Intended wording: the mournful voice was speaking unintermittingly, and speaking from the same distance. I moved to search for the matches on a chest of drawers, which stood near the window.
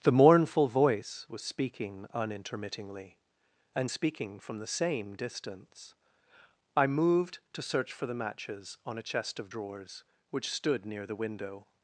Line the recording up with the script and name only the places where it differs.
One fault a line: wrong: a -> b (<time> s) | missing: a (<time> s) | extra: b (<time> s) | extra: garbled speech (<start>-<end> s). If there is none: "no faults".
no faults